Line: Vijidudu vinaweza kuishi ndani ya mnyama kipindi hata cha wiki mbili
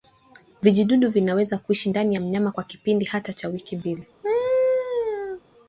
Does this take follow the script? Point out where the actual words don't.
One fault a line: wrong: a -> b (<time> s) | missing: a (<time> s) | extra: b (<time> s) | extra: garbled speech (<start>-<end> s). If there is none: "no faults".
extra: kwa (2.5 s)